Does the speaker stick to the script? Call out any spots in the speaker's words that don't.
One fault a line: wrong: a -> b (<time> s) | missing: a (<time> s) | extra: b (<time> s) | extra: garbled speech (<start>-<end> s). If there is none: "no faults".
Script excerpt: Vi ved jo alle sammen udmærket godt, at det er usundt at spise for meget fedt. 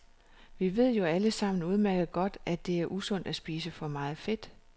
no faults